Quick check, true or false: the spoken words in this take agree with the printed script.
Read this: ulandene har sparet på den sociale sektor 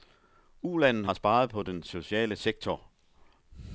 true